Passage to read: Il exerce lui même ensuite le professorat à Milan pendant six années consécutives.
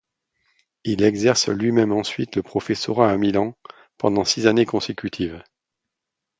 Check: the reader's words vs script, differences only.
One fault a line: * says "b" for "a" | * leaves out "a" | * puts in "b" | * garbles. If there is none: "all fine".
all fine